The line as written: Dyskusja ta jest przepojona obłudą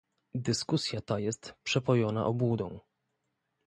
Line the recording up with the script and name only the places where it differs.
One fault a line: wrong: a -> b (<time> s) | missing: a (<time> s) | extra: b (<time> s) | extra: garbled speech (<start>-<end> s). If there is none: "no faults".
no faults